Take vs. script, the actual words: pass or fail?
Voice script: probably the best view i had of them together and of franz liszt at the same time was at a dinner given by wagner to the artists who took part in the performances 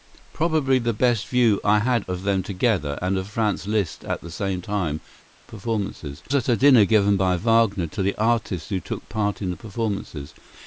fail